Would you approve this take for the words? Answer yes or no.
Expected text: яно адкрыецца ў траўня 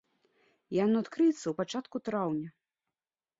no